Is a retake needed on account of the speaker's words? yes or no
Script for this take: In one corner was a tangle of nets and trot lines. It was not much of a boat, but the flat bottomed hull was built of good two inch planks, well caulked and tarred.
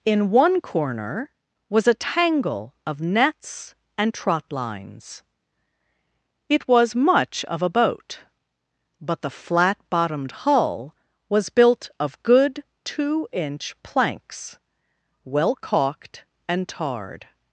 yes